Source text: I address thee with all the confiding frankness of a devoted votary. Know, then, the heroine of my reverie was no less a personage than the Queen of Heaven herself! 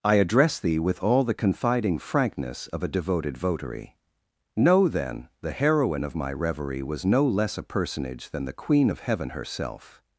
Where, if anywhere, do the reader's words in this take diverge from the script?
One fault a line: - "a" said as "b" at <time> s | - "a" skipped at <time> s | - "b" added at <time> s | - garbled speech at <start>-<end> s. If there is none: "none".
none